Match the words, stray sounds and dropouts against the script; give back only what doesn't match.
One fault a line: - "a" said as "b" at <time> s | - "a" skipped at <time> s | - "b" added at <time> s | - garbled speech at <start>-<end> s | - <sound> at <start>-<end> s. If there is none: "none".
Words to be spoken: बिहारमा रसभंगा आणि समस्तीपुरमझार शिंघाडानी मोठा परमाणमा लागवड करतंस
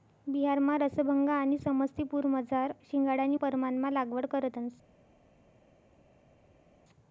- "मोठा" skipped at 3.4 s